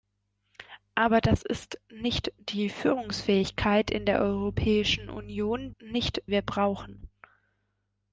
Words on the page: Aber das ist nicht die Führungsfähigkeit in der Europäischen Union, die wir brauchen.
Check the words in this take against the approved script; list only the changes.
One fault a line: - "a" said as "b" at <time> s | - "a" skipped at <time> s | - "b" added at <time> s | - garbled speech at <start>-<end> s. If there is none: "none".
- "die" said as "nicht" at 5.8 s